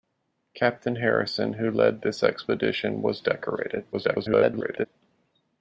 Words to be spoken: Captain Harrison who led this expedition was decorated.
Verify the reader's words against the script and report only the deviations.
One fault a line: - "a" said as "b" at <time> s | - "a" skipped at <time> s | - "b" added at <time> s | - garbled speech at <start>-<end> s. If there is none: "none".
- garbled speech at 3.9-4.9 s